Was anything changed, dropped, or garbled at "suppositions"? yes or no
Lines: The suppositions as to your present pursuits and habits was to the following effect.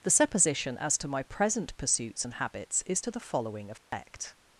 yes